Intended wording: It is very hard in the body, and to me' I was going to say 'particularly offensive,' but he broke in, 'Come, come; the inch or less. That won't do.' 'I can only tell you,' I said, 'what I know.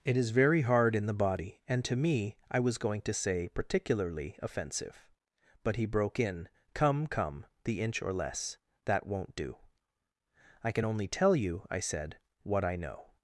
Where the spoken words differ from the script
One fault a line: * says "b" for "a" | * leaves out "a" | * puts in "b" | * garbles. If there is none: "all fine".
all fine